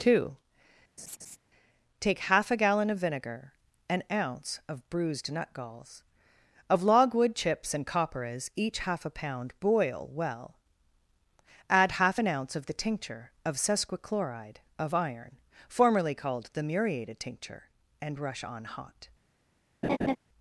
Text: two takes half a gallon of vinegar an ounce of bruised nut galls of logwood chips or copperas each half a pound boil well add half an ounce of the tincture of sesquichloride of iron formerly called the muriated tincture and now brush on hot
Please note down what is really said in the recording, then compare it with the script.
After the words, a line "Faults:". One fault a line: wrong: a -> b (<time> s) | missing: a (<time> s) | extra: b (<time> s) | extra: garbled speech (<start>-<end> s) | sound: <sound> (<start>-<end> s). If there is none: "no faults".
two take half a gallon of vinegar an ounce of bruised nut galls of logwood chips and copperas each half a pound boil well add half an ounce of the tincture of sesquichloride of iron formerly called the muriated tincture and brush on hot
Faults:
sound: laugh (1.0-1.4 s)
wrong: takes -> take (2.0 s)
wrong: or -> and (7.7 s)
missing: now (18.2 s)
sound: laugh (19.8-20.2 s)